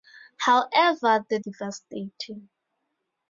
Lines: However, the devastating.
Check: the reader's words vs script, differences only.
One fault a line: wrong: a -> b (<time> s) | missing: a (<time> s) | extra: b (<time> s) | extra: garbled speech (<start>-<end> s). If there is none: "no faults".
no faults